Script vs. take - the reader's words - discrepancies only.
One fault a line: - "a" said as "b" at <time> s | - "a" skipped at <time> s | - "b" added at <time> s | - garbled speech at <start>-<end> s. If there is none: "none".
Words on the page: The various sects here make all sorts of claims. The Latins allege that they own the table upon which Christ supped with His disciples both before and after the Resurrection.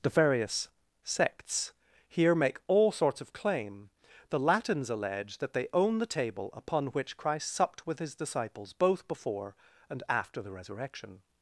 - "claims" said as "claim" at 3.3 s